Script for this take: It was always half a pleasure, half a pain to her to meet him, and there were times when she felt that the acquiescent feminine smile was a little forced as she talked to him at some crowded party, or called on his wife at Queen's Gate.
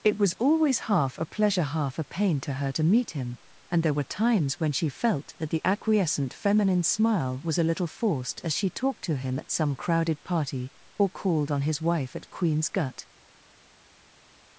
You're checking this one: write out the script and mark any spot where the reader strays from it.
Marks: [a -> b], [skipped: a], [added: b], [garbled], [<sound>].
It was always half a pleasure, half a pain to her to meet him, and there were times when she felt that the acquiescent feminine smile was a little forced as she talked to him at some crowded party, or called on his wife at Queen's [Gate. -> Gut]